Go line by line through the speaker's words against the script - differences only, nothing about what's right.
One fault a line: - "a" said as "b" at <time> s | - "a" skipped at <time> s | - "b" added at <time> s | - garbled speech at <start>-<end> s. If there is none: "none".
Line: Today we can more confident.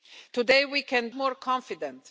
none